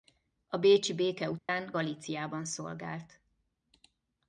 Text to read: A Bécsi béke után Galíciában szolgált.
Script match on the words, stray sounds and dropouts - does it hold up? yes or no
no